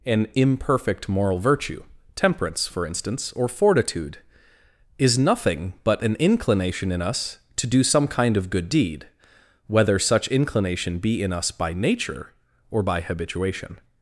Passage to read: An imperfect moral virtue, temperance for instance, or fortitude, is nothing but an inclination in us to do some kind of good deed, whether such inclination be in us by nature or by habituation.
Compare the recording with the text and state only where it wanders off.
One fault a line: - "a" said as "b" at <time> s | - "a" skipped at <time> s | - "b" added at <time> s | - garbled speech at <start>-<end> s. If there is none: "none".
none